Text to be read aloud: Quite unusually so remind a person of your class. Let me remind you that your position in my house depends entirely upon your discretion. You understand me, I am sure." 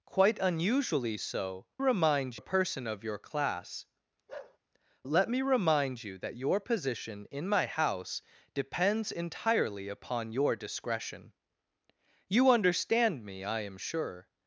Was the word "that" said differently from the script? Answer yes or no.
no